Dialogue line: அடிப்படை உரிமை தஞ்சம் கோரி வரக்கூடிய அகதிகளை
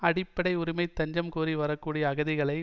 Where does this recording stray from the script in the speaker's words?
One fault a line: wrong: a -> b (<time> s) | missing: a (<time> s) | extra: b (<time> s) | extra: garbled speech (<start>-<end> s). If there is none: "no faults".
no faults